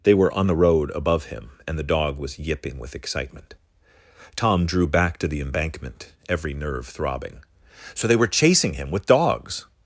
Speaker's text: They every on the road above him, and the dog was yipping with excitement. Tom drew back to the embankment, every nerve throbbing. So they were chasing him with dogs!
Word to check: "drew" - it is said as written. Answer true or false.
true